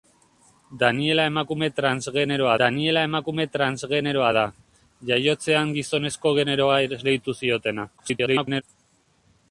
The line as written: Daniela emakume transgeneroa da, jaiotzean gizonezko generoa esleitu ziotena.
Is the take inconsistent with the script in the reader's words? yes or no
yes